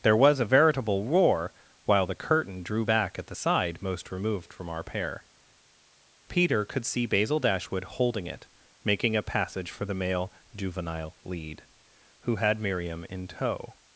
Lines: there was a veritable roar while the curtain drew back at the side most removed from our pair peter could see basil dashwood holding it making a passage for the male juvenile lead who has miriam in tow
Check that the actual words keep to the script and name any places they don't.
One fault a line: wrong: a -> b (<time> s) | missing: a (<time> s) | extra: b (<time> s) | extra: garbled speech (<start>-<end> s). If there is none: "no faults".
wrong: has -> had (12.3 s)